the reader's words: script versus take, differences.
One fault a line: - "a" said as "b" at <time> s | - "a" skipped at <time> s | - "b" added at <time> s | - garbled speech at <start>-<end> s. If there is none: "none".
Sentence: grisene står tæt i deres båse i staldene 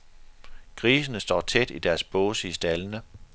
none